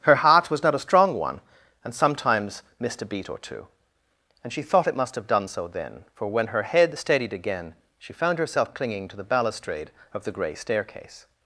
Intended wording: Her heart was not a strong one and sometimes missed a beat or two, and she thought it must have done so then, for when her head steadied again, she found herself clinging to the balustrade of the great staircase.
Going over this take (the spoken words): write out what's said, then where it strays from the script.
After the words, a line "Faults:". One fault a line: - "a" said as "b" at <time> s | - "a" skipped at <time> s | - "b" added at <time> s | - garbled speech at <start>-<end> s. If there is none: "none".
Her heart was not a strong one and sometimes missed a beat or two, and she thought it must have done so then, for when her head steadied again, she found herself clinging to the balustrade of the grey staircase.
Faults:
- "great" said as "grey" at 10.3 s